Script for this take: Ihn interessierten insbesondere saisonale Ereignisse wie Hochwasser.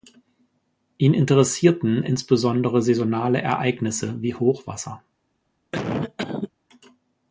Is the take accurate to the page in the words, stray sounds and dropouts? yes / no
no